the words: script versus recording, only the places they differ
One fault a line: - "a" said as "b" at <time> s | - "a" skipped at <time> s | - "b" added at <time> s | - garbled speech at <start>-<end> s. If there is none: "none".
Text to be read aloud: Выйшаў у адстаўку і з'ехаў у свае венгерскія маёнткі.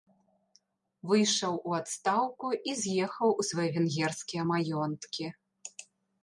none